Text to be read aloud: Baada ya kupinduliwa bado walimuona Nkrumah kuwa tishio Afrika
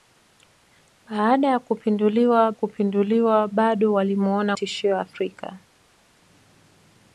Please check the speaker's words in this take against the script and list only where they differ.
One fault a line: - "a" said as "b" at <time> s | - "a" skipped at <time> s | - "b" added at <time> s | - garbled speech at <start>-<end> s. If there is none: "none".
- "kupinduliwa" added at 2.5 s
- "Nkrumah kuwa" skipped at 4.5 s